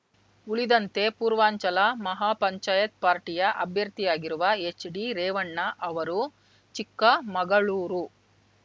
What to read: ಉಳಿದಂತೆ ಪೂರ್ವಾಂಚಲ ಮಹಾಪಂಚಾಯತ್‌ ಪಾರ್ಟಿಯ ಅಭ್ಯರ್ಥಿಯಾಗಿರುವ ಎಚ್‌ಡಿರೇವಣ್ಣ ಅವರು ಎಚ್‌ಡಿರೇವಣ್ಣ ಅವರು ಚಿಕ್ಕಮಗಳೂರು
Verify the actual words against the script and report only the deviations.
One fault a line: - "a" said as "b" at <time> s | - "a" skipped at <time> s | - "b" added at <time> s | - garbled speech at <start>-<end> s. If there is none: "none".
- "ಎಚ್‌ಡಿರೇವಣ್ಣ ಅವರು" skipped at 6.2 s